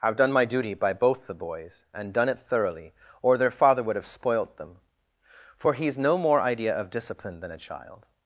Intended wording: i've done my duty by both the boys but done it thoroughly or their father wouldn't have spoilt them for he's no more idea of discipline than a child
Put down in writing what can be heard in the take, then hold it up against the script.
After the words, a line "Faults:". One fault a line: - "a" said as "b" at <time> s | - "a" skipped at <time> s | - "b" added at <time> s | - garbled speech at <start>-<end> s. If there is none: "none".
i've done my duty by both the boys and done it thoroughly or their father would have spoilt them for he's no more idea of discipline than a child
Faults:
- "but" said as "and" at 1.9 s
- "wouldn't" said as "would" at 3.8 s